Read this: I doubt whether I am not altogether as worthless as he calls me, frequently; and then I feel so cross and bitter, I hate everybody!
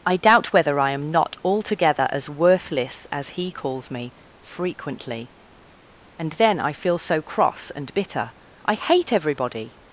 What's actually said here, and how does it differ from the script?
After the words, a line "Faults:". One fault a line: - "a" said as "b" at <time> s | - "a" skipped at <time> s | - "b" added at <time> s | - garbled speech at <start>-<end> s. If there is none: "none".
I doubt whether I am not altogether as worthless as he calls me, frequently; and then I feel so cross and bitter, I hate everybody!
Faults:
none